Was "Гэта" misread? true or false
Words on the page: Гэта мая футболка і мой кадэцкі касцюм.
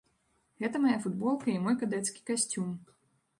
false